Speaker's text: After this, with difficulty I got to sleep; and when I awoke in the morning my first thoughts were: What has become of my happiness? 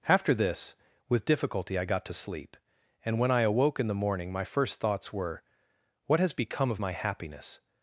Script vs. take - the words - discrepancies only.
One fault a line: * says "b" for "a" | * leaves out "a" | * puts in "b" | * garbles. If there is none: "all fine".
all fine